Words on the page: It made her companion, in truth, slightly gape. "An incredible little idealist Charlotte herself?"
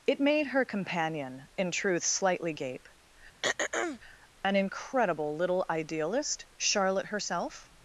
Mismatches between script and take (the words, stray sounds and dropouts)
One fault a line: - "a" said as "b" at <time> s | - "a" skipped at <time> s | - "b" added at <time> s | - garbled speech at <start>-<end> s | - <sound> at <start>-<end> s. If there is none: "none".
- throat clearing at 3.4-4.0 s